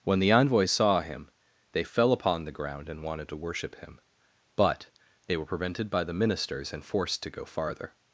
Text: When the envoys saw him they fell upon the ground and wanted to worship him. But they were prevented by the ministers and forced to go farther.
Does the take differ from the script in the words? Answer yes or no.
no